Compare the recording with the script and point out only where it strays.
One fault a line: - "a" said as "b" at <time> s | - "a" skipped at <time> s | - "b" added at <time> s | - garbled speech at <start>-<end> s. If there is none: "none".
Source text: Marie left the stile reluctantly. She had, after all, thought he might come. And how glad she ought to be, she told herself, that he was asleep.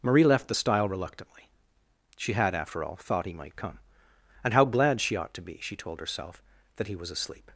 none